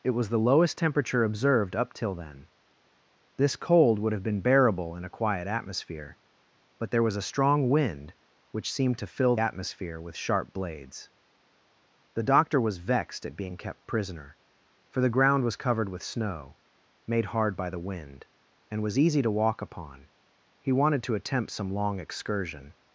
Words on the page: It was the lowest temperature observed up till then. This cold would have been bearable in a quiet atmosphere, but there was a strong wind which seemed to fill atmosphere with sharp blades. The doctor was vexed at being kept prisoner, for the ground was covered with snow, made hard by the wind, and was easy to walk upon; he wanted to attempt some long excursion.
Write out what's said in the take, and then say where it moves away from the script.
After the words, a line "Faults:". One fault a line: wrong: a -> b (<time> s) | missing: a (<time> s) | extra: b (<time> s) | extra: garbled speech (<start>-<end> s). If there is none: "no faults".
It was the lowest temperature observed up till then. This cold would have been bearable in a quiet atmosphere, but there was a strong wind which seemed to fill atmosphere with sharp blades. The doctor was vexed at being kept prisoner, for the ground was covered with snow, made hard by the wind, and was easy to walk upon; he wanted to attempt some long excursion.
Faults:
no faults